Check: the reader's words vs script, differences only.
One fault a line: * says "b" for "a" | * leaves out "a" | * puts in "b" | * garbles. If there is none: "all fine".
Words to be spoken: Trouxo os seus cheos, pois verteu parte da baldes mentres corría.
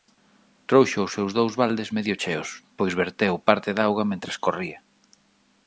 * puts in "dous baldes medio"
* says "auga" for "baldes"